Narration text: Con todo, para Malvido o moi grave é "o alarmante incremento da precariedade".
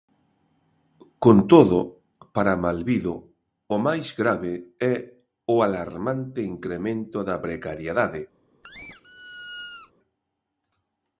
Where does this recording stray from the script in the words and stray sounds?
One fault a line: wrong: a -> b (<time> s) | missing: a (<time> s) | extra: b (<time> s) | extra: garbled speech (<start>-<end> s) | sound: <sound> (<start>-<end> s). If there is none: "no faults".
wrong: moi -> máis (3.9 s)
sound: squeak (8.6-9.9 s)